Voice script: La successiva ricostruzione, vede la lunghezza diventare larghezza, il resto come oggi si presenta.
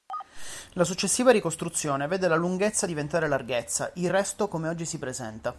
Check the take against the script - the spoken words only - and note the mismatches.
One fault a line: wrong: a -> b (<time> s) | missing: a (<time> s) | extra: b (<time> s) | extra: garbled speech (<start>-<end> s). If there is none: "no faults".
no faults